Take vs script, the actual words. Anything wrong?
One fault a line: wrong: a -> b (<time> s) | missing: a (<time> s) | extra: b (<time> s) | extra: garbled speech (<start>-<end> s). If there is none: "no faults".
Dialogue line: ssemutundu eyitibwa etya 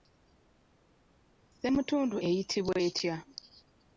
no faults